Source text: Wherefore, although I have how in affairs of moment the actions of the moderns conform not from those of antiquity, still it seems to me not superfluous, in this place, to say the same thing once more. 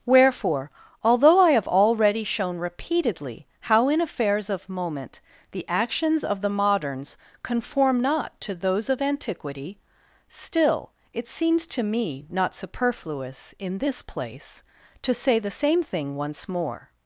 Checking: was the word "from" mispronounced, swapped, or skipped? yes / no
yes